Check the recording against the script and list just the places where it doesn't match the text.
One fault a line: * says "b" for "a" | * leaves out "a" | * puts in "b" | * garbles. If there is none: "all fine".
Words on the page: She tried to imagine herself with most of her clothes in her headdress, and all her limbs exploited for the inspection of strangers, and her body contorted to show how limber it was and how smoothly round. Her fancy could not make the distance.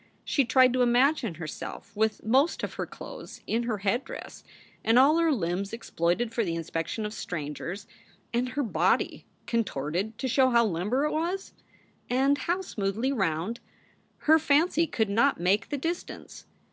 all fine